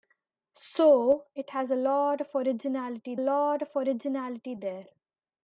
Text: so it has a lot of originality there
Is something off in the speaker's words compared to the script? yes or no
yes